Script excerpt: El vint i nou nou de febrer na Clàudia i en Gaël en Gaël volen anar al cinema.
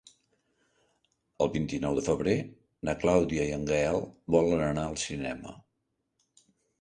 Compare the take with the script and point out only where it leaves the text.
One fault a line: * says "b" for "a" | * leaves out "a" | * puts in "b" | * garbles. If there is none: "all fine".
* leaves out "nou"
* leaves out "en Gaël"